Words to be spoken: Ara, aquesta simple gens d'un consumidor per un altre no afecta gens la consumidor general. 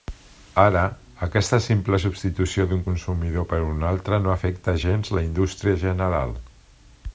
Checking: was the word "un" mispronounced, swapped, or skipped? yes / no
no